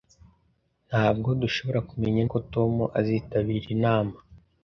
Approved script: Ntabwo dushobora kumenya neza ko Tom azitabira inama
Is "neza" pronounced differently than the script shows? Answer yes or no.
yes